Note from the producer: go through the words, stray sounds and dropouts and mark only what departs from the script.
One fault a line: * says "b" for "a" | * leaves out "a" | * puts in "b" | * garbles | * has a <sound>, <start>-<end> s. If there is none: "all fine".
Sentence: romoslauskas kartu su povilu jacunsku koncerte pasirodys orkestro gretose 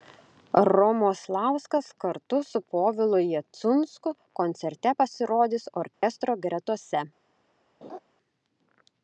* has a dropout, 5.9-6.0 s
* has a laugh, 7.8-8.0 s